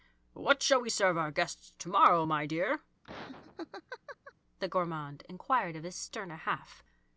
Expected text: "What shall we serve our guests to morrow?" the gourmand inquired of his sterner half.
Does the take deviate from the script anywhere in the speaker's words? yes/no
yes